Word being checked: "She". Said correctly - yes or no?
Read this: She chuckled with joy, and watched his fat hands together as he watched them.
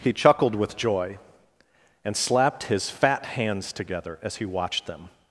no